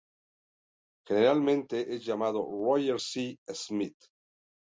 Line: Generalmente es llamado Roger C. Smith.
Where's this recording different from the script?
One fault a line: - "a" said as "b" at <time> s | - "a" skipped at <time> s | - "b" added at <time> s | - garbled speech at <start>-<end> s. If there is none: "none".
none